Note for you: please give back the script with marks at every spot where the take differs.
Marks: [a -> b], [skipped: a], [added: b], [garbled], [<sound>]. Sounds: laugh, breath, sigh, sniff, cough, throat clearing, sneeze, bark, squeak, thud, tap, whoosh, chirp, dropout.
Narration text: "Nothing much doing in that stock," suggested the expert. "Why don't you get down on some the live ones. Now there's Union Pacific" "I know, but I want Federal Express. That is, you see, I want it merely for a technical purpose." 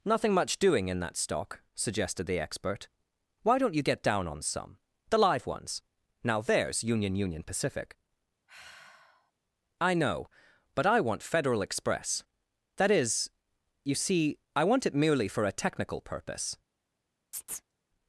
"Nothing much doing in that stock," suggested the expert. "Why don't you get down on some the live ones. Now there's Union [added: Union] Pacific" [sigh] "I know, but I want Federal Express. That is, you see, I want it merely for a technical purpose." [chirp]